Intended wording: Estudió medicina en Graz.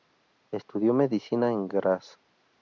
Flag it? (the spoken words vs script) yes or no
no